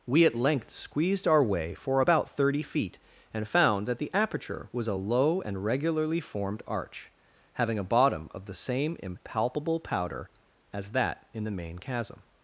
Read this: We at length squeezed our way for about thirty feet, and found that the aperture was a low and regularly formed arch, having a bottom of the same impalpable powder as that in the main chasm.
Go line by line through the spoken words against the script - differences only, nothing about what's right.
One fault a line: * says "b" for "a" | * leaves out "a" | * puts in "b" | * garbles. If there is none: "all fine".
all fine